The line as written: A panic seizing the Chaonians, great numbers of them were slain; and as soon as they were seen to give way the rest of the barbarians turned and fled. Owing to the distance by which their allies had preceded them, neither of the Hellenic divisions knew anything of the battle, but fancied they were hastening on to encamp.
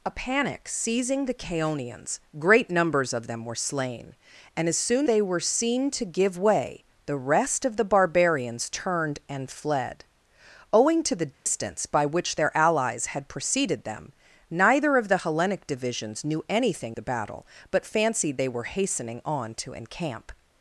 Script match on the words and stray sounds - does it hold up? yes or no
no